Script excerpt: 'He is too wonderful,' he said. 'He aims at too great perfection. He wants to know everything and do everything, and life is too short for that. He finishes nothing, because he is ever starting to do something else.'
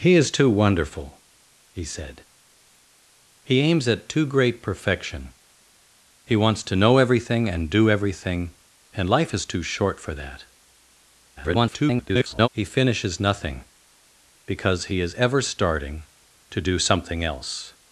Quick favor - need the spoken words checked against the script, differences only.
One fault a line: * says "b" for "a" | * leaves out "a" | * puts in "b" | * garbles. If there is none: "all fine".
* garbles